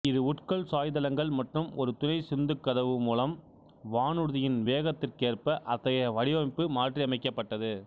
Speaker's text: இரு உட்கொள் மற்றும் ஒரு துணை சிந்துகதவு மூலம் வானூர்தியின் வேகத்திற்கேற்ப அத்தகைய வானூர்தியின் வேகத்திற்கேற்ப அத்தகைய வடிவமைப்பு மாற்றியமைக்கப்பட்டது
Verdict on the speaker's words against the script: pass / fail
fail